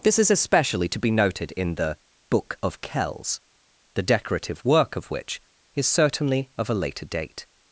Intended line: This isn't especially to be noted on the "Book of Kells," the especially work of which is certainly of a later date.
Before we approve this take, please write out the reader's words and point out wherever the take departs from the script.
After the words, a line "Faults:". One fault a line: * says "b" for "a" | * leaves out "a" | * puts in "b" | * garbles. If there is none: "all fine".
This is especially to be noted in the "Book of Kells," the decorative work of which is certainly of a later date.
Faults:
* says "is" for "isn't"
* says "in" for "on"
* says "decorative" for "especially"